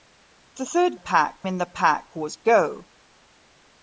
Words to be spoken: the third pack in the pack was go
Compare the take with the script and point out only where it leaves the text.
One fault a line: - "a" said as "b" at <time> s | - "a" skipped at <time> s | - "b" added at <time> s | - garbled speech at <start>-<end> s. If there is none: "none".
none